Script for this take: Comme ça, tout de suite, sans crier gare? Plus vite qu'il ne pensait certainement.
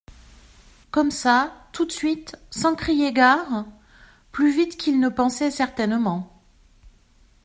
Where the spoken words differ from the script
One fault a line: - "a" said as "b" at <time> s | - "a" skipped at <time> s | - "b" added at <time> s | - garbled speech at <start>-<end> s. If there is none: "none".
none